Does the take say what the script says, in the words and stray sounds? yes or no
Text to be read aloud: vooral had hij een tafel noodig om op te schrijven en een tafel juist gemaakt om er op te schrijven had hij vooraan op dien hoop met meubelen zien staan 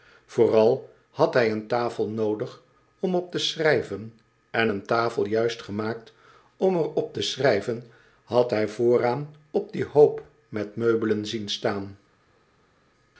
yes